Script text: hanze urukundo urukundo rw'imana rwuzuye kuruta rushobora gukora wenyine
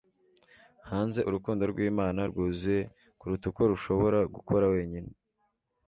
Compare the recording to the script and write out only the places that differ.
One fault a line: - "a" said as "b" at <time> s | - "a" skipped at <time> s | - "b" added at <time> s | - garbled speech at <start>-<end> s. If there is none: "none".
- "urukundo" skipped at 1.6 s
- "uko" added at 3.5 s